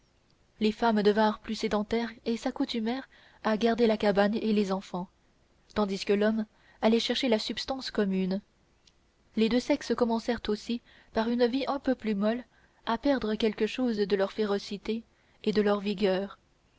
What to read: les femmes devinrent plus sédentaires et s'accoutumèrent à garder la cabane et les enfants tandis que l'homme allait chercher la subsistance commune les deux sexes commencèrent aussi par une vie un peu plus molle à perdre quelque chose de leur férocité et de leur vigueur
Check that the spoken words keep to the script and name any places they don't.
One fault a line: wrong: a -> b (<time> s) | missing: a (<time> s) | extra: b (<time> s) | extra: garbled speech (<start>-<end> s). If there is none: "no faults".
no faults